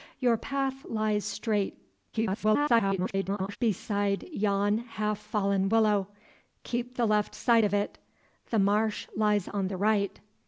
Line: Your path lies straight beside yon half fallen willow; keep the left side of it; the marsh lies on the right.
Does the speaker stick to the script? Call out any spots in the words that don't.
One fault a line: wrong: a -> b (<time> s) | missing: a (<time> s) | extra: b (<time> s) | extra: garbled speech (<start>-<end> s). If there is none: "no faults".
extra: garbled speech (2.1-3.6 s)